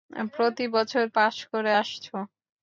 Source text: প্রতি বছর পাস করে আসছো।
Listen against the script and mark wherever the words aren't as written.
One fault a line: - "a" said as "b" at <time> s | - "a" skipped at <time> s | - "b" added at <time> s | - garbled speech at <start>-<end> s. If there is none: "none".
none